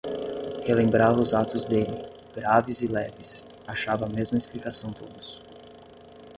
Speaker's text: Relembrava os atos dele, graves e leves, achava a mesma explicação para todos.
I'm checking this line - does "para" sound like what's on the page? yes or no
no